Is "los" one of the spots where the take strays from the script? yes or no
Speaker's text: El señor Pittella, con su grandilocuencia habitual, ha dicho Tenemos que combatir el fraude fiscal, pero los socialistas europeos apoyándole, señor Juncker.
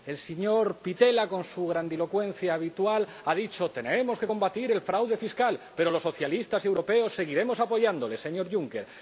no